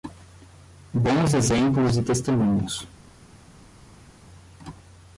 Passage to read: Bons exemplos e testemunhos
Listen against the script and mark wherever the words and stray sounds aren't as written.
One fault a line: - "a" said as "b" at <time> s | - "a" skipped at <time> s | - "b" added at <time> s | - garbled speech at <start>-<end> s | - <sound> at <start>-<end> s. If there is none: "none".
none